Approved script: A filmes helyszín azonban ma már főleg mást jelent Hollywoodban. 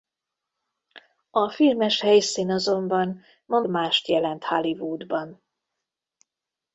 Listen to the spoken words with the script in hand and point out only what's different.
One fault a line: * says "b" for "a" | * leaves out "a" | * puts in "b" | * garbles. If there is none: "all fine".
* leaves out "már főleg"